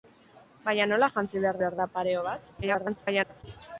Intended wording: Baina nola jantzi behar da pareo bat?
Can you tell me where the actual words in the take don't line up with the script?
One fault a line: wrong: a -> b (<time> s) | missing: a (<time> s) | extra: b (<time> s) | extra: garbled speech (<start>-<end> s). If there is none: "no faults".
extra: behar (1.6 s)
extra: garbled speech (2.6-3.4 s)